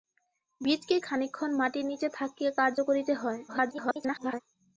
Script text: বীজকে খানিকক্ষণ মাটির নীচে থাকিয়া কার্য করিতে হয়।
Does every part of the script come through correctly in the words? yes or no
no